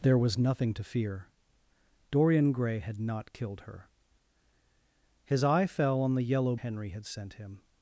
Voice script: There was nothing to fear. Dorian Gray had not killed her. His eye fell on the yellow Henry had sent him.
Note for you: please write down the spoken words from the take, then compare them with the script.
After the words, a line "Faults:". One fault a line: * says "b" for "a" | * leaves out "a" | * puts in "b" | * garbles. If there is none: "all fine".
There was nothing to fear. Dorian Gray had not killed her. His eye fell on the yellow Henry had sent him.
Faults:
all fine